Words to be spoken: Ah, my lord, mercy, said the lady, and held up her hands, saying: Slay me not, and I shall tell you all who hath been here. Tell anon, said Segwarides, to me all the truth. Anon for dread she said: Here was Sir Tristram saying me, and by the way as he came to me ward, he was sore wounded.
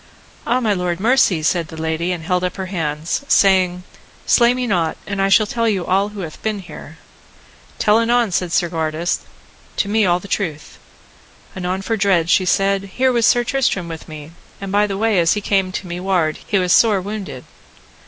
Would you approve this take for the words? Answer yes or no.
no